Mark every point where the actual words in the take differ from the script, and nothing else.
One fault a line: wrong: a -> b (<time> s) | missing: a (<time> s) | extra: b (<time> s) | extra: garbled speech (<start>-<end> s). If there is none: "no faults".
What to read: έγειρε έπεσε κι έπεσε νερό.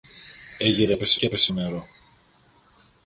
no faults